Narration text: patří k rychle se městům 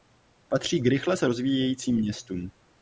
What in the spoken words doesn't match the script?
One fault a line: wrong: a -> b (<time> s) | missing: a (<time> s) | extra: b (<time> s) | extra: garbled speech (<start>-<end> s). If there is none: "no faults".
extra: rozvíjejícím (1.2 s)